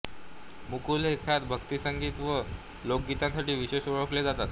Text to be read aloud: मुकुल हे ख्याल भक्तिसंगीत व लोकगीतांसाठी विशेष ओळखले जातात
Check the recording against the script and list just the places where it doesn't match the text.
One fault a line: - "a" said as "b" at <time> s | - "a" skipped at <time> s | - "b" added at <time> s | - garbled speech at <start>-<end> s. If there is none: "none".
none